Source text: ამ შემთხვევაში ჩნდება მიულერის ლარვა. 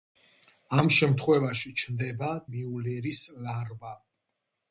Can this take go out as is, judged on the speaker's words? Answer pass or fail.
pass